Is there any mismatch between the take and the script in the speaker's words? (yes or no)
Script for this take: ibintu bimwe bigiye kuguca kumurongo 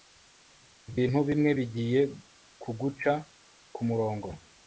no